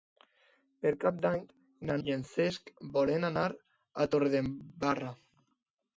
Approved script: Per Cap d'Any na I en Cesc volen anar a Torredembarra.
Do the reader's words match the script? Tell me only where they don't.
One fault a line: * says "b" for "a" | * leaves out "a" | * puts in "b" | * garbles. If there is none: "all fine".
all fine